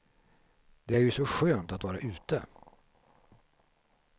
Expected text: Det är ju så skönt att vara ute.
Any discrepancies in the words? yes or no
no